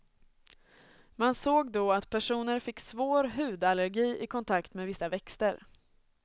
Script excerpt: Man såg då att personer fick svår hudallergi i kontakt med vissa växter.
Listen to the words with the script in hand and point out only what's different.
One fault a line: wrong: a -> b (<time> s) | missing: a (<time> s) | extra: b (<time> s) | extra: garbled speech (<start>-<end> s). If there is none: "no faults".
no faults